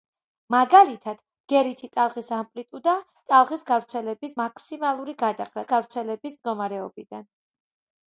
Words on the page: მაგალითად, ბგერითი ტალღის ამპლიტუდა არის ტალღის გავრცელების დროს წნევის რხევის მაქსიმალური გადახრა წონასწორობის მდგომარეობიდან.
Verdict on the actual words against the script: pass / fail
fail